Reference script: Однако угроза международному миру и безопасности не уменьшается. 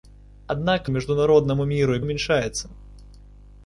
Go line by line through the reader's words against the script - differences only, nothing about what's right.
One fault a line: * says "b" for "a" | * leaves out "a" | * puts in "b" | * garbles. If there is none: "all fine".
* leaves out "угроза"
* leaves out "безопасности не"